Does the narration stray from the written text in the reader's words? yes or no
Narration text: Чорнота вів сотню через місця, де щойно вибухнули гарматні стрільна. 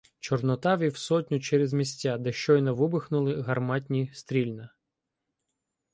no